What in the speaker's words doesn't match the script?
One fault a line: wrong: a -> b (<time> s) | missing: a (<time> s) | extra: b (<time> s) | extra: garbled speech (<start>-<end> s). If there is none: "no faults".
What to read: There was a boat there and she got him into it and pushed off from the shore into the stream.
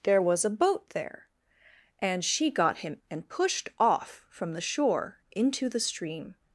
missing: into it (3.0 s)